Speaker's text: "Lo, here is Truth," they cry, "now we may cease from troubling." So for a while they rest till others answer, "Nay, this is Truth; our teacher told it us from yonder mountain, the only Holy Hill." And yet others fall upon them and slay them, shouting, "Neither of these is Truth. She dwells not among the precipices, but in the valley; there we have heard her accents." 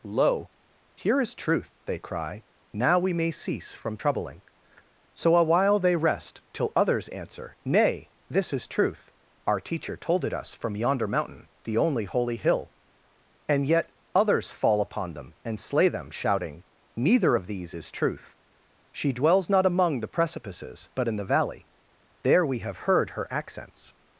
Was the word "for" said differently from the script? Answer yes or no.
yes